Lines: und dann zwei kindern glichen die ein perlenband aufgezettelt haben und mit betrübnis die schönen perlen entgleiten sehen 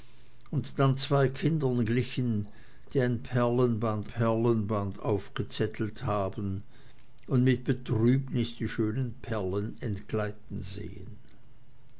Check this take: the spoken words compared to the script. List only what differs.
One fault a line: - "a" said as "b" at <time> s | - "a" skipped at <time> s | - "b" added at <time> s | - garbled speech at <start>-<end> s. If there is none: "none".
- "perlenband" added at 4.1 s